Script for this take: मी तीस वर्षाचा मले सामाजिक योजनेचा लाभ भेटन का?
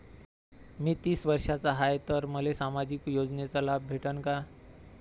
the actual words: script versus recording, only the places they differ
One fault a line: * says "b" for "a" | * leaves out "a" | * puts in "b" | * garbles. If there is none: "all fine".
* puts in "हाय तर"